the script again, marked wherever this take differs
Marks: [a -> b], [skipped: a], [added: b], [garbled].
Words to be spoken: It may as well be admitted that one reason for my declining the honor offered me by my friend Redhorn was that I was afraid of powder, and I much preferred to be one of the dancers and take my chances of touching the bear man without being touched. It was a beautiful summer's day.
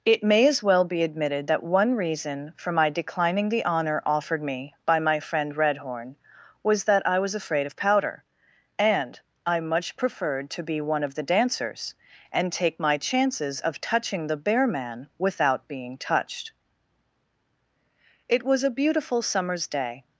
It may as well be admitted that one reason for my declining the honor offered me by my friend Redhorn was that I was afraid of powder, and I much preferred to be one of the dancers and take my chances of touching the bear man without being touched. It was a beautiful summer's day.